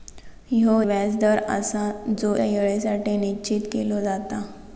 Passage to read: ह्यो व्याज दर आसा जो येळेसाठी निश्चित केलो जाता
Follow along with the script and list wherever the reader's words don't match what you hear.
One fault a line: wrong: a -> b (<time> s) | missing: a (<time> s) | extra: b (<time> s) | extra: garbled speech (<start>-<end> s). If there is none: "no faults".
no faults